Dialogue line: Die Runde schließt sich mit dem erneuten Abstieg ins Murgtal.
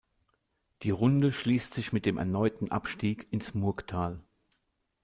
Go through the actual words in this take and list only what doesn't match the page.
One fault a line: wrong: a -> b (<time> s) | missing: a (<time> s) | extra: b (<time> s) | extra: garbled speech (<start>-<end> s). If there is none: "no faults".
no faults